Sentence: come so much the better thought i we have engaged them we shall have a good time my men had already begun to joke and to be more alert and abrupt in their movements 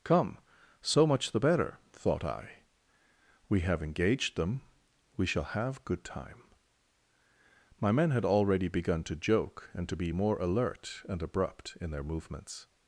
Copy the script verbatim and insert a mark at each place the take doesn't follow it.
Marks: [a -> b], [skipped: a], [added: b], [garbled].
come so much the better thought i we have engaged them we shall have [skipped: a] good time my men had already begun to joke and to be more alert and abrupt in their movements